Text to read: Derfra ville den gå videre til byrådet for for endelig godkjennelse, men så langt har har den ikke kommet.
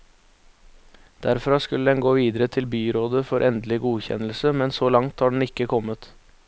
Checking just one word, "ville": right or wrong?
wrong